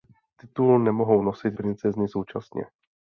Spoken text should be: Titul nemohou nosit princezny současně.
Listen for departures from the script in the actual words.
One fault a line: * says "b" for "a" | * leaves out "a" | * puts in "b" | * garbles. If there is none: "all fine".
all fine